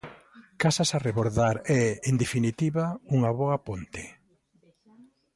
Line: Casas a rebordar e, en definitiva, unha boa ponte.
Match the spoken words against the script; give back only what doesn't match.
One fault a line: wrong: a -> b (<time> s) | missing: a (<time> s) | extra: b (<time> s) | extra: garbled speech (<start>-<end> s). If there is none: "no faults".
no faults